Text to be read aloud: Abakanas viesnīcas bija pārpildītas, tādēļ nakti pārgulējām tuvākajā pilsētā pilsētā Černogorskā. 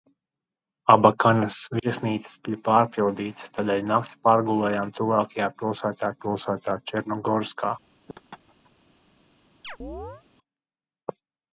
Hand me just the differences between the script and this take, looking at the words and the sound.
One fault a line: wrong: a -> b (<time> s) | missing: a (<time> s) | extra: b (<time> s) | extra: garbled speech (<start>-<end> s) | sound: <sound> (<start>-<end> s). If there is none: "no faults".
sound: laugh (8.1-8.7 s)
sound: chirp (9.6-10.2 s)